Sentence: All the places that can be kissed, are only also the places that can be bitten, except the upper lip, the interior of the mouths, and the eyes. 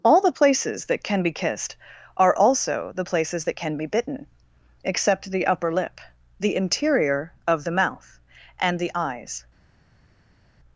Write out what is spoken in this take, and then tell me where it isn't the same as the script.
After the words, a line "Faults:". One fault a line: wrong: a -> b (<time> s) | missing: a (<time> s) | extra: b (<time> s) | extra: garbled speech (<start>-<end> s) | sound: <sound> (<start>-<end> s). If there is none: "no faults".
All the places that can be kissed, are also the places that can be bitten, except the upper lip, the interior of the mouth, and the eyes.
Faults:
missing: only (2.4 s)
wrong: mouths -> mouth (7.7 s)